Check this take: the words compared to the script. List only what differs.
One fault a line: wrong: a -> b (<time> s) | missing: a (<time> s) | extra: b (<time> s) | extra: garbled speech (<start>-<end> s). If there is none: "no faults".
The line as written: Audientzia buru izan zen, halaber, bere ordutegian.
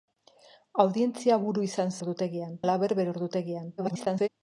wrong: zen -> ordutegian (2.0 s)
extra: garbled speech (3.8-4.3 s)